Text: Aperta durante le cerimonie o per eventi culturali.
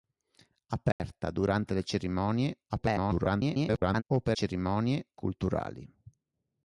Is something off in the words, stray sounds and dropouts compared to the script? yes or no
yes